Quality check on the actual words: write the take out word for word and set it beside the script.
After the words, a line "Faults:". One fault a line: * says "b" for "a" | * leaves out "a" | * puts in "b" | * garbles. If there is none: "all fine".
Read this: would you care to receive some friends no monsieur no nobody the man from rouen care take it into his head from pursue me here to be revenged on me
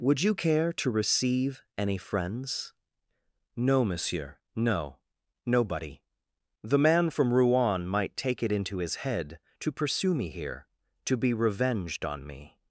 would you care to receive any friends no monsieur no nobody the man from rouen might take it into his head to pursue me here to be revenged on me
Faults:
* says "any" for "some"
* says "might" for "care"
* says "to" for "from"